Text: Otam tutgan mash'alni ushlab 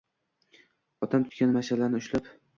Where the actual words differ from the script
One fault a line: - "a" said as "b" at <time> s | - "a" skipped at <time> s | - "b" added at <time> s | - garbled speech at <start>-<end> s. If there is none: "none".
none